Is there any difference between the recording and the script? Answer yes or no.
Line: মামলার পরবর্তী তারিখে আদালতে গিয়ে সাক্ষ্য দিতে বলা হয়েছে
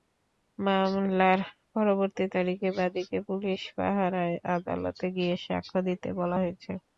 yes